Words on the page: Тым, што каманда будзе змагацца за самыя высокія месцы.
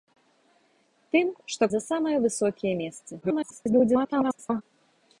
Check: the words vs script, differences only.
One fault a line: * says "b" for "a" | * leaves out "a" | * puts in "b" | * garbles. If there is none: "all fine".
* leaves out "каманда будзе змагацца"
* garbles